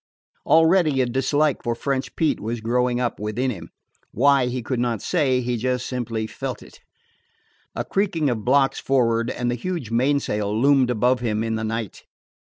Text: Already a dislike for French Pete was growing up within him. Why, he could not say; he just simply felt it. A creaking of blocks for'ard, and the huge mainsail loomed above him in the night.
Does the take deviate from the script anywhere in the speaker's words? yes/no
no